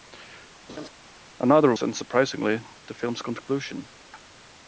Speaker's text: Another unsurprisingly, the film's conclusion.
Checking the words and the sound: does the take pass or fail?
fail